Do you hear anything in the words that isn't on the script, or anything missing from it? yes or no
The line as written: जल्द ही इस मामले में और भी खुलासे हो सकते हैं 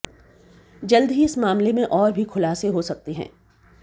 no